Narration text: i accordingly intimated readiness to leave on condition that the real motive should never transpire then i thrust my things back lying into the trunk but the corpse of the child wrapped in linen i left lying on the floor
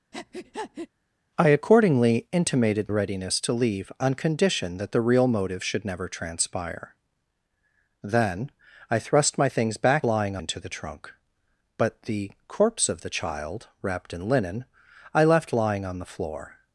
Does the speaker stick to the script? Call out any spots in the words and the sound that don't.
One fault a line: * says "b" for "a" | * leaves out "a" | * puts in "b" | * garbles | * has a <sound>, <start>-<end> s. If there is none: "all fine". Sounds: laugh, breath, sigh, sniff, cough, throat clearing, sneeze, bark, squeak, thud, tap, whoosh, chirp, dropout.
* has a breath, 0.1-0.9 s